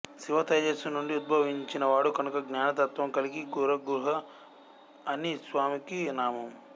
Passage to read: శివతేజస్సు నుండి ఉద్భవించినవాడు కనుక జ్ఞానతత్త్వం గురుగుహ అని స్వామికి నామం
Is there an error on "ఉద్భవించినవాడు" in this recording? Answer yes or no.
no